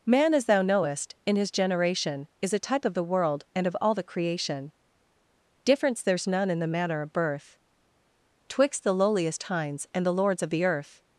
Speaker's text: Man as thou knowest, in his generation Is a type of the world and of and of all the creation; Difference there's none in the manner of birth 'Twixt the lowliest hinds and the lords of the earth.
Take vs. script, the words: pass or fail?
fail